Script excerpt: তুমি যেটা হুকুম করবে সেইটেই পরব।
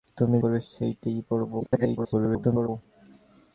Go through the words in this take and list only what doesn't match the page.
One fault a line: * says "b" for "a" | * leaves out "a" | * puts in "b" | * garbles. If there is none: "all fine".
* leaves out "যেটা হুকুম"
* garbles